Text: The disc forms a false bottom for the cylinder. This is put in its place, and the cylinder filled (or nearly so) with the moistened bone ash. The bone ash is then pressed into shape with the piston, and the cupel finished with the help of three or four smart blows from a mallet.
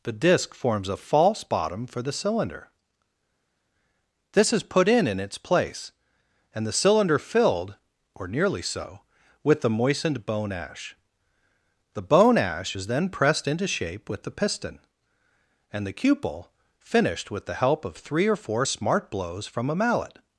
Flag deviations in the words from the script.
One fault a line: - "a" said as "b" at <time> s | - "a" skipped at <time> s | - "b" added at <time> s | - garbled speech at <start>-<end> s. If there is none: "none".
- "in" added at 5.1 s